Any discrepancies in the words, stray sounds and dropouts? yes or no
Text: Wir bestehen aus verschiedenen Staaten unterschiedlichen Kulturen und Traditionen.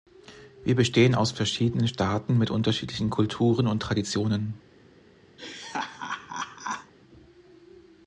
yes